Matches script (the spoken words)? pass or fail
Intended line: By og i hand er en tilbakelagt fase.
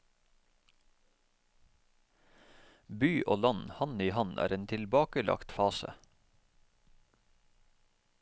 fail